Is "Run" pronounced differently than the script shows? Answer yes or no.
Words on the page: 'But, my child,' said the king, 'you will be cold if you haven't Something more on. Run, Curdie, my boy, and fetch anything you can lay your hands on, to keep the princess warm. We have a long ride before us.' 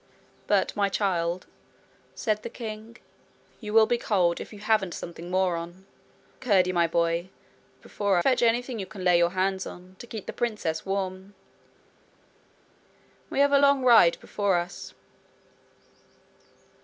yes